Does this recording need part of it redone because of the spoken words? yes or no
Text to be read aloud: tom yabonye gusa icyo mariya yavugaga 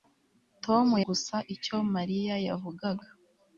yes